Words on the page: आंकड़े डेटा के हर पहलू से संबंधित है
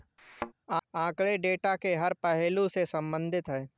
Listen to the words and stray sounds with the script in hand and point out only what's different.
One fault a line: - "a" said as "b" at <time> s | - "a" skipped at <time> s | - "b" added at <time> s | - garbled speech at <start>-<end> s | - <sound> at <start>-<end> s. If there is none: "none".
- thud at 0.2-0.5 s